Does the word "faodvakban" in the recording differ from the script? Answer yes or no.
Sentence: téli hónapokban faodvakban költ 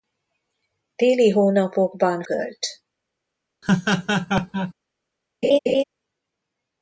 yes